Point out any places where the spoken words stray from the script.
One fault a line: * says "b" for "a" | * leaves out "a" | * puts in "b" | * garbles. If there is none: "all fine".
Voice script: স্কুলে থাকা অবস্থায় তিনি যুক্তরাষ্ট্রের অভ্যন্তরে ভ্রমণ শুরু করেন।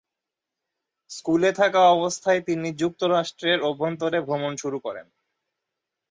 all fine